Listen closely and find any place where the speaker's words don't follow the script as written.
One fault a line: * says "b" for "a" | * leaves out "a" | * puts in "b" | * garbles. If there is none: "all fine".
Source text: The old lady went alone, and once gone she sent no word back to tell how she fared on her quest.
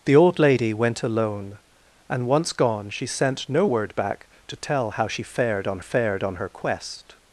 * puts in "fared on"